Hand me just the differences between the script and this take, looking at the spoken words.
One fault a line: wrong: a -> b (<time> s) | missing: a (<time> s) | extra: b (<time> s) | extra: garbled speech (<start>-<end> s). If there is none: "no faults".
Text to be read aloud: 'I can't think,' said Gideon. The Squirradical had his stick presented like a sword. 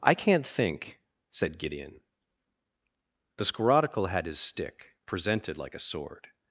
no faults